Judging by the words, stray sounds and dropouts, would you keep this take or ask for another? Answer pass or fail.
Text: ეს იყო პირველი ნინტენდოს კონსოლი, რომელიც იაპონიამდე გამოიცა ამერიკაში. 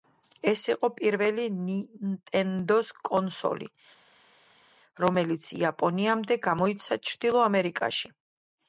fail